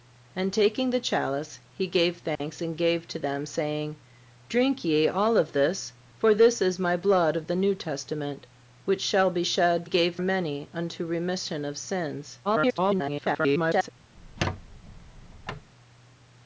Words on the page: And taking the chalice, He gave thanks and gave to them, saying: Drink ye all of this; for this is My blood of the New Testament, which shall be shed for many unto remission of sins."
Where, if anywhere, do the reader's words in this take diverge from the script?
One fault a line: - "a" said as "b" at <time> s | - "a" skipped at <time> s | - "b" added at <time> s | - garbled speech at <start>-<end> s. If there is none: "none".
- "for" said as "gave" at 9.8 s
- garbled speech at 12.4-13.9 s